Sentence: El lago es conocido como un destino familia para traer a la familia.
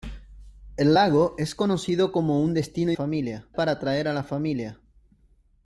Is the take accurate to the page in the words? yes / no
yes